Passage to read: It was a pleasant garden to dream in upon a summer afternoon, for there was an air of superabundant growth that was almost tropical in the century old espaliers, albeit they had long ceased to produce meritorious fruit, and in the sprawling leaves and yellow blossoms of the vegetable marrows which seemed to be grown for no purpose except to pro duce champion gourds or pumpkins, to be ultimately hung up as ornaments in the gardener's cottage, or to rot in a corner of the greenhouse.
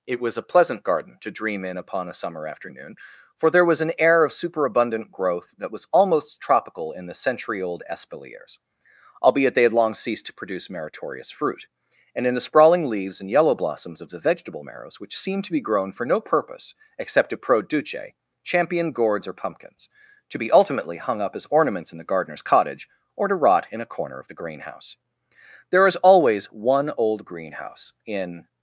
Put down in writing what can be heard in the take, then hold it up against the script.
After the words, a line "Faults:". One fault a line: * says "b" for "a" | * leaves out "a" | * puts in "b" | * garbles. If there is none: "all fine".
It was a pleasant garden to dream in upon a summer afternoon, for there was an air of superabundant growth that was almost tropical in the century old espaliers, albeit they had long ceased to produce meritorious fruit, and in the sprawling leaves and yellow blossoms of the vegetable marrows which seemed to be grown for no purpose except to pro duce champion gourds or pumpkins, to be ultimately hung up as ornaments in the gardener's cottage, or to rot in a corner of the greenhouse. There is always one old greenhouse in
Faults:
* puts in "There is always one old greenhouse in"